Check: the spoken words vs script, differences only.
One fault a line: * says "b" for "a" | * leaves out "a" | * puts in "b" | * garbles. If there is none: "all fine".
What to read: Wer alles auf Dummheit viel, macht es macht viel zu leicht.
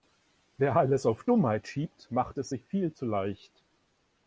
* says "schiebt" for "viel"
* says "sich" for "macht"